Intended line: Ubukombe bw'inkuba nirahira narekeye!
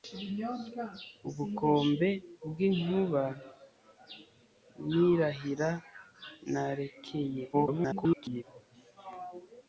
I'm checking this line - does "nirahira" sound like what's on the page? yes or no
yes